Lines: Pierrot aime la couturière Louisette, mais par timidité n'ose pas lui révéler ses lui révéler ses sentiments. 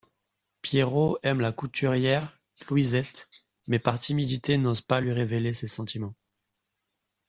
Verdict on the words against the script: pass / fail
fail